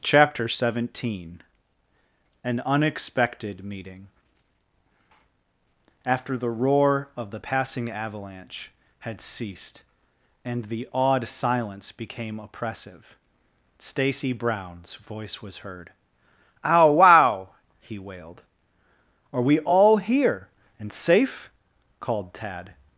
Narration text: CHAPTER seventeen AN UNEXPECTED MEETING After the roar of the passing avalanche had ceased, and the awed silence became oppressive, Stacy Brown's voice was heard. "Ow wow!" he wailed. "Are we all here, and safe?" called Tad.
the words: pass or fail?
pass